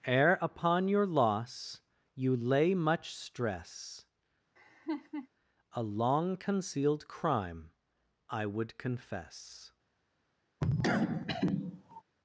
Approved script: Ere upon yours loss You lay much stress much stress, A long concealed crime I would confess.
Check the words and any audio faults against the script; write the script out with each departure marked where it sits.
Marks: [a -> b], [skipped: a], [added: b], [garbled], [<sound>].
Ere upon [yours -> your] loss You lay much stress [skipped: much stress,] [laugh] A long concealed crime I would confess. [cough]